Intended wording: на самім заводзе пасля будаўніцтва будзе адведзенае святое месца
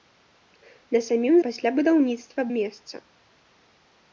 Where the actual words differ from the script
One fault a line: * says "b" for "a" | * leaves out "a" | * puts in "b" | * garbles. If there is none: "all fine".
* leaves out "заводзе"
* leaves out "будзе адведзенае святое"